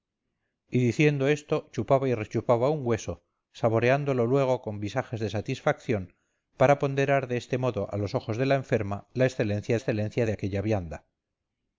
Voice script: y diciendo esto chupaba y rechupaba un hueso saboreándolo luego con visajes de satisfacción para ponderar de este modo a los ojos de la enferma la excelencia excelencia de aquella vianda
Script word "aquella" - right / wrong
right